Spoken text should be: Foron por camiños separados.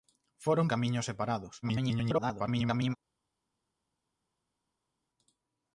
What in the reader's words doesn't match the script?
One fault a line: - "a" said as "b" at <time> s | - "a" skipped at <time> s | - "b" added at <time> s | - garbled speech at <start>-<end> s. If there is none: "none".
- "por" skipped at 0.7 s
- garbled speech at 1.6-3.0 s